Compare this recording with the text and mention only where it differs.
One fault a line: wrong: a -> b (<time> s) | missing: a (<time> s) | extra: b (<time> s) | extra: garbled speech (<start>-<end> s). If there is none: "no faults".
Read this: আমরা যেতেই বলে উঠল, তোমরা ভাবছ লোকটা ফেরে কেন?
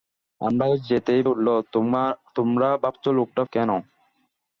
missing: বলে (1.2 s)
missing: ফেরে (3.4 s)